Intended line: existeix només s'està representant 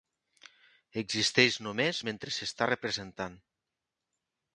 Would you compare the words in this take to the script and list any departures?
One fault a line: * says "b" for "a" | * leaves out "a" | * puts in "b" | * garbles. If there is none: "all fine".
* puts in "mentre"